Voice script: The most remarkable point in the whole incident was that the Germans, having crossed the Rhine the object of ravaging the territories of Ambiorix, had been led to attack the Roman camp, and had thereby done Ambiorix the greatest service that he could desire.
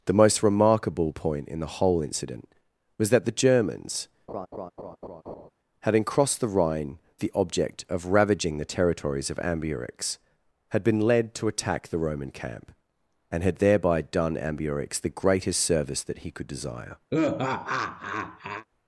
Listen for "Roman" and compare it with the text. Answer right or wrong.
right